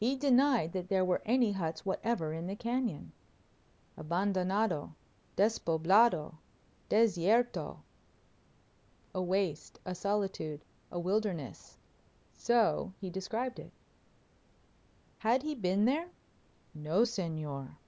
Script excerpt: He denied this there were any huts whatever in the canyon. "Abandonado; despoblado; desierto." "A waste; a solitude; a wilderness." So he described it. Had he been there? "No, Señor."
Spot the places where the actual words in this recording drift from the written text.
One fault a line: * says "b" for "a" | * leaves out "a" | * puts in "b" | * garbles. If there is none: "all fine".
* says "that" for "this"